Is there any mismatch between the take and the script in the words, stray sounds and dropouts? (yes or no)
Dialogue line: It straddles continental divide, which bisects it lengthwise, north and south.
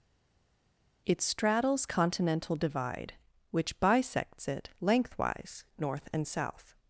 no